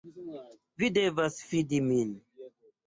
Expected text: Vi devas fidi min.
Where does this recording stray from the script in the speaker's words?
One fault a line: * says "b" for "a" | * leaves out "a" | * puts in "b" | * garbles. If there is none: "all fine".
all fine